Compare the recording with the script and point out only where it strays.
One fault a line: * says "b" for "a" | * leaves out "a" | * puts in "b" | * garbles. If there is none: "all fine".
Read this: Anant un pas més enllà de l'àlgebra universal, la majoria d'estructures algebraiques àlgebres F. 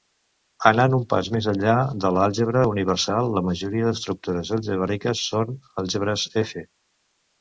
* puts in "són"